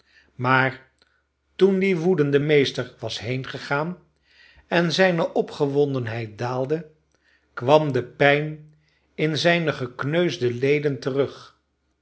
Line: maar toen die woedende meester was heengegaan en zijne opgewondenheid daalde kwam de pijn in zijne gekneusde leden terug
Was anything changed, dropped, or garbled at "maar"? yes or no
no